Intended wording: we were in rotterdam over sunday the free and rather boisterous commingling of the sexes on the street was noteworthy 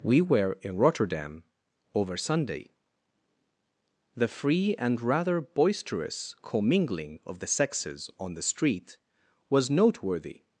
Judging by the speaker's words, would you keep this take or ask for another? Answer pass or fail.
pass